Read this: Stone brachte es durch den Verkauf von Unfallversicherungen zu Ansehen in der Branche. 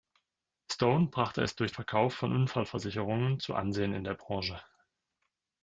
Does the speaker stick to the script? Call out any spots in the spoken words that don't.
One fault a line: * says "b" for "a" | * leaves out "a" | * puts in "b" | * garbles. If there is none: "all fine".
* leaves out "den"